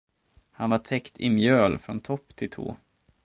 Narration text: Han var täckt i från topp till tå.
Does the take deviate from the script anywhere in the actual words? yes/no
yes